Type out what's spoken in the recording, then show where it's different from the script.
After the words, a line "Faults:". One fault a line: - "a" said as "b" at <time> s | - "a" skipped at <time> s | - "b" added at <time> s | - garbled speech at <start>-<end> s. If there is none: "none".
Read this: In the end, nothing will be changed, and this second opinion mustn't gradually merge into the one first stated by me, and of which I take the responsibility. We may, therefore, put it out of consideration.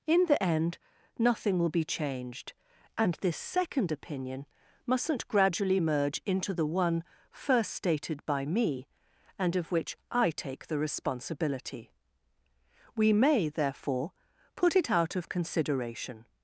In the end, nothing will be changed, and this second opinion mustn't gradually merge into the one first stated by me, and of which I take the responsibility. We may, therefore, put it out of consideration.
Faults:
none